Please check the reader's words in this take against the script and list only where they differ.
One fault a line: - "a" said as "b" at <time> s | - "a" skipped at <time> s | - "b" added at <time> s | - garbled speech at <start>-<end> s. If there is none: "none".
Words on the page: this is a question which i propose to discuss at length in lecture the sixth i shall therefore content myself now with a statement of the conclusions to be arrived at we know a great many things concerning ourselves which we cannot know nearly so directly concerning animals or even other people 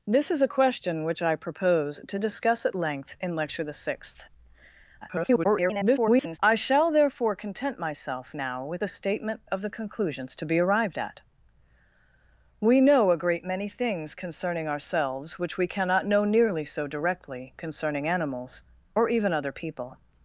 - garbled speech at 5.0-6.4 s